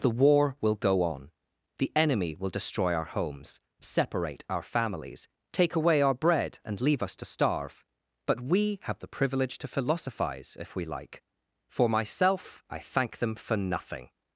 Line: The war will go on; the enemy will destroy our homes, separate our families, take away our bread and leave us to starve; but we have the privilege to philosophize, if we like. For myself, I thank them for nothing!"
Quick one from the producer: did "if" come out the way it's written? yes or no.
yes